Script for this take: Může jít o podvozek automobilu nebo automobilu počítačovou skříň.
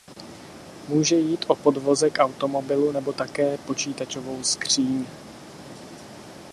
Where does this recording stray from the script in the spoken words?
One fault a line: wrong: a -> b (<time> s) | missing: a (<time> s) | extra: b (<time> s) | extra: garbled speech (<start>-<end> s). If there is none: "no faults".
wrong: automobilu -> také (3.1 s)